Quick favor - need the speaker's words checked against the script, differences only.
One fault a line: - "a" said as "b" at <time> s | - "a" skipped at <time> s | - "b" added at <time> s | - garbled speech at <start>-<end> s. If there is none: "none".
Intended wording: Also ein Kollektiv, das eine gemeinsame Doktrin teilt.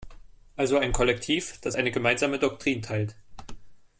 none